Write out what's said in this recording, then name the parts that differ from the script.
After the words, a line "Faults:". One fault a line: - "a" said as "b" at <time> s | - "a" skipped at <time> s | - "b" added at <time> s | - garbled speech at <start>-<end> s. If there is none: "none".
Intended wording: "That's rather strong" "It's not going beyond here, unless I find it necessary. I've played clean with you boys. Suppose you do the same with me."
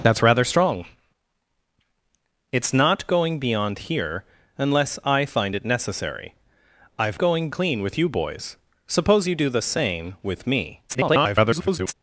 "That's rather strong" "It's not going beyond here, unless I find it necessary. I've going clean with you boys. Suppose you do the same with me." [garbled]
Faults:
- "played" said as "going" at 7.2 s
- garbled speech at 10.9-11.9 s